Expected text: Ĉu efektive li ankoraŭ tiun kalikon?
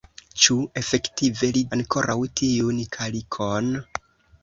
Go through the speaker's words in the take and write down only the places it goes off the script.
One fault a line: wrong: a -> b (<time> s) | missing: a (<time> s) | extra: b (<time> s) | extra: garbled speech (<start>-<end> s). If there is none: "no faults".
no faults